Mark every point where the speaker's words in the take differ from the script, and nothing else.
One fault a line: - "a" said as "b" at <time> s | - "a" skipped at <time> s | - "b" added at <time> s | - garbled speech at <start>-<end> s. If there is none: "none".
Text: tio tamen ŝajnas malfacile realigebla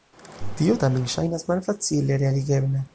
none